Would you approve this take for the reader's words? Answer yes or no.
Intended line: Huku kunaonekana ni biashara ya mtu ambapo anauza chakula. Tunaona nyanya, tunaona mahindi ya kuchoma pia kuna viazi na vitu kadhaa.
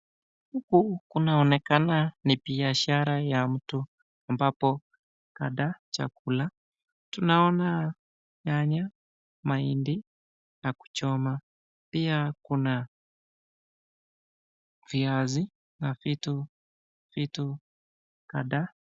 no